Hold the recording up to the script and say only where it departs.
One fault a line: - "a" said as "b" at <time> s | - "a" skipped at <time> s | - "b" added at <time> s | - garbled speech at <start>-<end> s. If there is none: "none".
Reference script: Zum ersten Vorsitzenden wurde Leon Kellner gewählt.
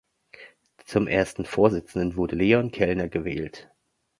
none